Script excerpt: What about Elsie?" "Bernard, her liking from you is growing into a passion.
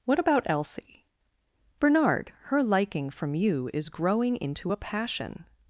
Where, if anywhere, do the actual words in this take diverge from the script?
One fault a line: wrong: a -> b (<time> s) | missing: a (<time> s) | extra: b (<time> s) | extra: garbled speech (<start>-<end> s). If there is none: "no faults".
no faults